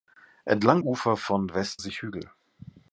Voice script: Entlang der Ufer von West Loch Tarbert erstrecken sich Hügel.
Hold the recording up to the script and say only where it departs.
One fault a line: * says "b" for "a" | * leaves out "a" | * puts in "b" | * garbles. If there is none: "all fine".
* leaves out "der"
* leaves out "Loch Tarbert erstrecken"